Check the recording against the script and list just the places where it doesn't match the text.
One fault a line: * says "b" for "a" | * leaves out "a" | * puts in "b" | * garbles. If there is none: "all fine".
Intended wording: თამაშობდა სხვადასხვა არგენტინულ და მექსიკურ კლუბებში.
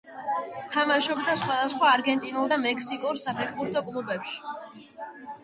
* puts in "საფეხბურთო"